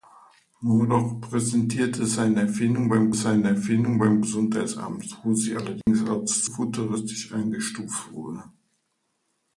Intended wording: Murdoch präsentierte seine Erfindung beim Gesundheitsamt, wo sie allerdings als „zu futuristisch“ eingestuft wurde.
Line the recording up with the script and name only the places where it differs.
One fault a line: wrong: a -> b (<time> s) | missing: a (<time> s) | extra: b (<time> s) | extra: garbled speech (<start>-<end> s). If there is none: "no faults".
extra: seine Erfindung beim (3.1 s)
missing: zu (6.4 s)